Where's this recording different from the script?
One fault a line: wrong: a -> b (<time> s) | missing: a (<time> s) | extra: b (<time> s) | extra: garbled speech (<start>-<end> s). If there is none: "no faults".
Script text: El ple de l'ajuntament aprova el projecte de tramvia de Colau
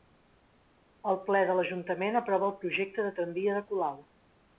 no faults